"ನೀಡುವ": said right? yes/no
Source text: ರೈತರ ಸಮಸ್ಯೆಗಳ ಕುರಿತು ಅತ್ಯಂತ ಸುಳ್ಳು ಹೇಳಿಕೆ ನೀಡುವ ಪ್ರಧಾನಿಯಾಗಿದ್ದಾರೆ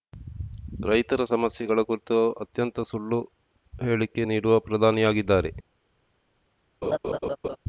yes